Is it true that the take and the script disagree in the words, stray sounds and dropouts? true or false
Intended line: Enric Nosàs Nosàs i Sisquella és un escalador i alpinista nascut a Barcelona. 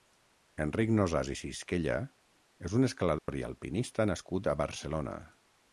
true